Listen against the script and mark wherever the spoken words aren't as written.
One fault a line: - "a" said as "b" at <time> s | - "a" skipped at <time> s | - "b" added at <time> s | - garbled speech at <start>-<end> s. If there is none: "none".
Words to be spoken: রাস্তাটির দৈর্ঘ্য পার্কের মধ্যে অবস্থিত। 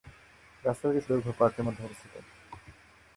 none